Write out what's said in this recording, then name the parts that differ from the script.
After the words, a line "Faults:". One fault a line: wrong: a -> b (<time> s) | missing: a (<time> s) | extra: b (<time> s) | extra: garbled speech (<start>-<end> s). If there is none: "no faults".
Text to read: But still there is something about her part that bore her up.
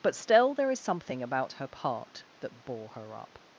But still there is something about her part that bore her up.
Faults:
no faults